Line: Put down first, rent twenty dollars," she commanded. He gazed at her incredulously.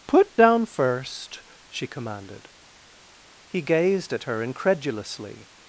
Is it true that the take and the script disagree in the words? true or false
true